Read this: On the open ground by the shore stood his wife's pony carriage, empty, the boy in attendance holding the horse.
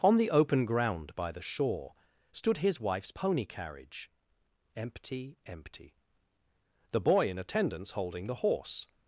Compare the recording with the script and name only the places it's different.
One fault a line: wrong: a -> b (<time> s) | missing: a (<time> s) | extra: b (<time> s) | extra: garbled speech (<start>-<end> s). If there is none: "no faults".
extra: empty (5.4 s)